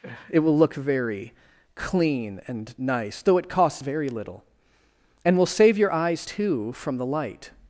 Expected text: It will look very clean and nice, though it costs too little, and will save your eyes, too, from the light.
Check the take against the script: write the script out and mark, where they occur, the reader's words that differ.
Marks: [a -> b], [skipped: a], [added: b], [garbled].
It will look very clean and nice, though it costs [too -> very] little, and will save your eyes, too, from the light.